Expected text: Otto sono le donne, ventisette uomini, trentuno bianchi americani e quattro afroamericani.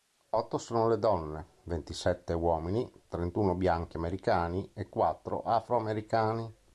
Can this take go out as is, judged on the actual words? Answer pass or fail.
pass